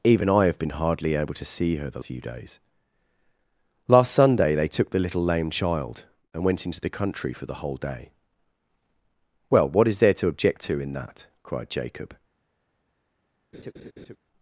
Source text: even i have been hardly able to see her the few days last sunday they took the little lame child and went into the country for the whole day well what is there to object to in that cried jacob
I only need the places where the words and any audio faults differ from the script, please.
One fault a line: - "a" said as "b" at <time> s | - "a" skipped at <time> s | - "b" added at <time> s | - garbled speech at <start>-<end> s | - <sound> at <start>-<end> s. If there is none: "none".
- laugh at 13.5-14.2 s